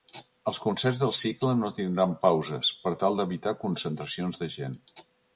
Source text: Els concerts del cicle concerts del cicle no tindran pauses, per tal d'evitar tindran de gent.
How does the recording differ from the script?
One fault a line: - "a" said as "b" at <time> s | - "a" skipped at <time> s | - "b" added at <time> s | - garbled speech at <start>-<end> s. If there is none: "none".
- "concerts del cicle" skipped at 1.5 s
- "tindran" said as "concentracions" at 3.6 s